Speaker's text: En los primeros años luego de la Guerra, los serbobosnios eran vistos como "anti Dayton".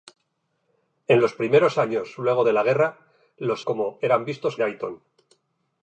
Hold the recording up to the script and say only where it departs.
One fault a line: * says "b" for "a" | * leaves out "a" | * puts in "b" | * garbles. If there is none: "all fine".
* says "como" for "serbobosnios"
* leaves out "como anti"